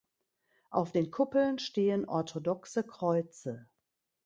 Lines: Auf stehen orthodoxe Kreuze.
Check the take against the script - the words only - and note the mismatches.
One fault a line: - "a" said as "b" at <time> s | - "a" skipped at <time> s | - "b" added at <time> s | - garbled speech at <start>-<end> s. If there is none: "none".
- "den Kuppeln" added at 0.9 s